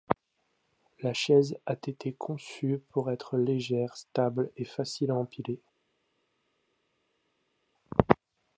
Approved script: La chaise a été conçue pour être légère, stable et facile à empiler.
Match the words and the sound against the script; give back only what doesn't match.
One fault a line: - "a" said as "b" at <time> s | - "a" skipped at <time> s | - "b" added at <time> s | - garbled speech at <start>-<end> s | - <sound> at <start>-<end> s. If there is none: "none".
none